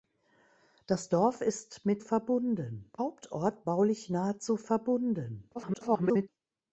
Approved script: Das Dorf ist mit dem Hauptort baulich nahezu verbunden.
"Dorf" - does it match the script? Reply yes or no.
yes